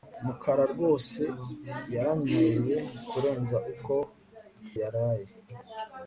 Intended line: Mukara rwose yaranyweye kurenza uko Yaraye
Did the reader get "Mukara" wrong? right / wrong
right